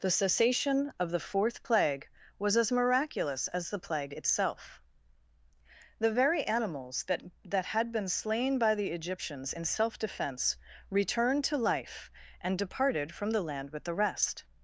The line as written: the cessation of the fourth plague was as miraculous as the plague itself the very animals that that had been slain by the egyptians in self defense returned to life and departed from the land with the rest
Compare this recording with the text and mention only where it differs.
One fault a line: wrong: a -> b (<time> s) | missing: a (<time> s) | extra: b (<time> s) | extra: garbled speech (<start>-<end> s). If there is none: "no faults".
no faults